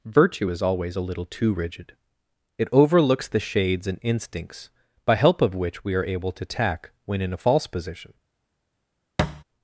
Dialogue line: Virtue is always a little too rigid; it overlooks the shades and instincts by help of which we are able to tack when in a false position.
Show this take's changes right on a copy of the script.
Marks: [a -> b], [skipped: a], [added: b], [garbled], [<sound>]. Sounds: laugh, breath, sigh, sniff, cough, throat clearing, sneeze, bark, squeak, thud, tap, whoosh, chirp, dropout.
Virtue is always a little too rigid; it overlooks the shades and instincts by help of which we are able to tack when in a false position. [thud]